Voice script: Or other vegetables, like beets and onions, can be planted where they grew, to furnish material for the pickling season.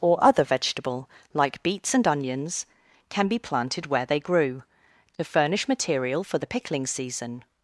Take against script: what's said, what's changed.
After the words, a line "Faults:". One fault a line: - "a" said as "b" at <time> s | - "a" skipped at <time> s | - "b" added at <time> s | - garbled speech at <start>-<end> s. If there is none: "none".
Or other vegetable, like beets and onions, can be planted where they grew, to furnish material for the pickling season.
Faults:
- "vegetables" said as "vegetable" at 0.4 s